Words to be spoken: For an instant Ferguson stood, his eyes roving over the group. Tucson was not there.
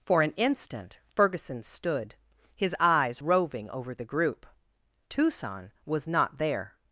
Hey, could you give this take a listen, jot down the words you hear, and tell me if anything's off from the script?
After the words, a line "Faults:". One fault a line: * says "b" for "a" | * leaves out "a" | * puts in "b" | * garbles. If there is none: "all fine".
For an instant Ferguson stood, his eyes roving over the group. Tucson was not there.
Faults:
all fine